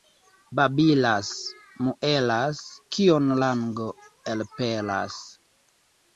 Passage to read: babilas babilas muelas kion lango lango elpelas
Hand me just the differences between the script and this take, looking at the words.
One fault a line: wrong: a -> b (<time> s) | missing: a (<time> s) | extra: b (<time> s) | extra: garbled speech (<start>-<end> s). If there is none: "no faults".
missing: babilas (1.3 s)
missing: lango (3.9 s)